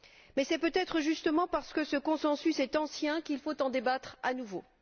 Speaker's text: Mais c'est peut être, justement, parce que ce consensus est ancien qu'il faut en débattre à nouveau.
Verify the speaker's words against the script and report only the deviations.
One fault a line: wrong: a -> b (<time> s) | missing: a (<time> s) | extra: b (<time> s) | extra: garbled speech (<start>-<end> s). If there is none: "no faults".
no faults